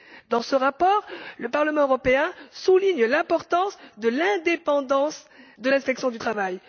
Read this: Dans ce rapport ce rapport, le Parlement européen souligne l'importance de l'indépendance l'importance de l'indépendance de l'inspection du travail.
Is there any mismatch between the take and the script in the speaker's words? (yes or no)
yes